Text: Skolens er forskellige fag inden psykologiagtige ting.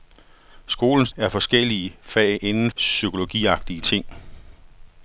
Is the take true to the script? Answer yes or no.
yes